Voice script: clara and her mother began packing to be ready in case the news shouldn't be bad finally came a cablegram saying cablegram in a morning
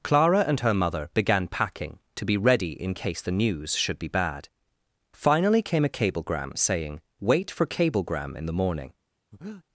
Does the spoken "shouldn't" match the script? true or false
false